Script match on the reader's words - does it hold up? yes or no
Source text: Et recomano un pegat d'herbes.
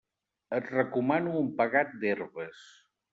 yes